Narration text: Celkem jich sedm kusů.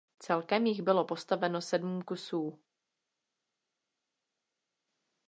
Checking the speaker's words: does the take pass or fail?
fail